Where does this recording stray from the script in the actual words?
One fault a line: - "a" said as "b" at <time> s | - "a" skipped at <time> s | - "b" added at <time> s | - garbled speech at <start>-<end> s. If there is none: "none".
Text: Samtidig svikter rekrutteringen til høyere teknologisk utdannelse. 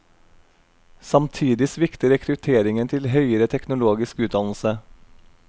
none